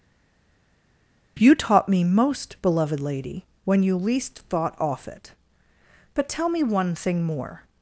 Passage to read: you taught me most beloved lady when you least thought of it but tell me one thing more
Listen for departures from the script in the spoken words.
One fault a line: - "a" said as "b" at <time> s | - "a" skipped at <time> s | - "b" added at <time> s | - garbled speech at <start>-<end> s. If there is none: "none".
- "of" said as "off" at 4.8 s